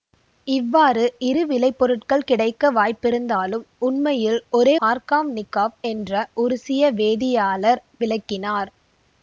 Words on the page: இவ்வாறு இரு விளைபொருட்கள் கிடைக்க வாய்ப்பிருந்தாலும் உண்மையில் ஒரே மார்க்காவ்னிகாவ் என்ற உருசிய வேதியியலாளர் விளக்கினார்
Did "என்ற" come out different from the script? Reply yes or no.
no